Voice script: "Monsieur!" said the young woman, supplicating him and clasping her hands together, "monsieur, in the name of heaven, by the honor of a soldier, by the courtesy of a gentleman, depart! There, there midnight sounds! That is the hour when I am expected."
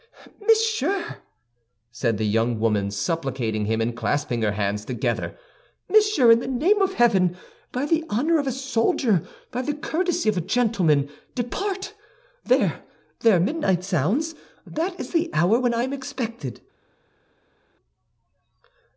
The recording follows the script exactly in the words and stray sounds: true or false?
true